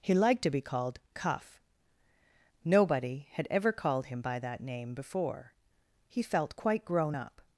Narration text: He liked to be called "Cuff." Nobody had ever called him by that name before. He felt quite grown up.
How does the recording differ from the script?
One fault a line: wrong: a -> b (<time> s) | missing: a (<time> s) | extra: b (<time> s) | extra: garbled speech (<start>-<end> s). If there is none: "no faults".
no faults